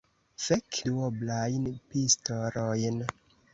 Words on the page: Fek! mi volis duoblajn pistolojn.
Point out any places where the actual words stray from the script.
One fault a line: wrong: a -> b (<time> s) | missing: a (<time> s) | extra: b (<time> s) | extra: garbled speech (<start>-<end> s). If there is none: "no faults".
missing: mi volis (0.8 s)